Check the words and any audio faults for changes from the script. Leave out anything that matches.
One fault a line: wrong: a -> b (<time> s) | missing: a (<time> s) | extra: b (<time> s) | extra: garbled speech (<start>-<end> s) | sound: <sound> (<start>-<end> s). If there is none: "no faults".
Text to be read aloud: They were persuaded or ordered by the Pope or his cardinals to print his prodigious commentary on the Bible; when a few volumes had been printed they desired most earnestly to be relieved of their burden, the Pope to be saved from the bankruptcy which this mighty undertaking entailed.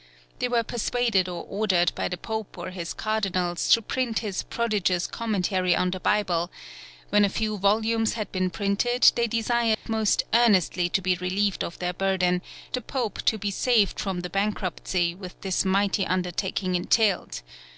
sound: dropout (9.7-9.9 s)